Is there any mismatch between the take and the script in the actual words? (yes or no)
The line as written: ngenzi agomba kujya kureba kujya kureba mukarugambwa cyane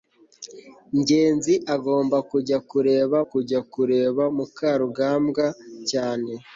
no